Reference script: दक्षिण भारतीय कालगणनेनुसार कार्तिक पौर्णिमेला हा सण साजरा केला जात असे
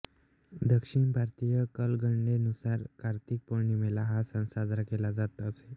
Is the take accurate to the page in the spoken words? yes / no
yes